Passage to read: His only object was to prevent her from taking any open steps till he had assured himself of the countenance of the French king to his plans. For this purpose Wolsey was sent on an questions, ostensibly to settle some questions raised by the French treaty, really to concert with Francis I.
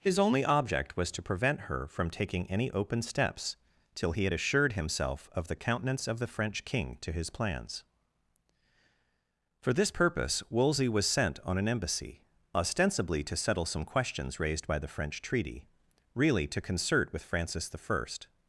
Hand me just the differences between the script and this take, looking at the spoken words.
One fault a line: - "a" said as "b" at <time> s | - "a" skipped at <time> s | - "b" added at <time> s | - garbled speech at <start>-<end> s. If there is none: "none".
- "questions" said as "embassy" at 11.7 s